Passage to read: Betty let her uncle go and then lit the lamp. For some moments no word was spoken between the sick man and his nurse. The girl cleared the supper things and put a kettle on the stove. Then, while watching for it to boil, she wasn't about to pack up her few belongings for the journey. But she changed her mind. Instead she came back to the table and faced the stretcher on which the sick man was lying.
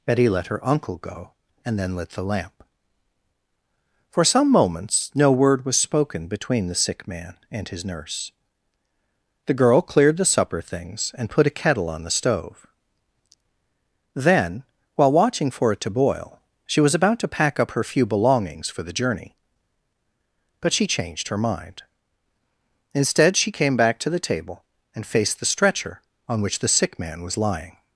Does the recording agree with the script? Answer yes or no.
no